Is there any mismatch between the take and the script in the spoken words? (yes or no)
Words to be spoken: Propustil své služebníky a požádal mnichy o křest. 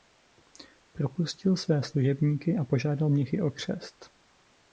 no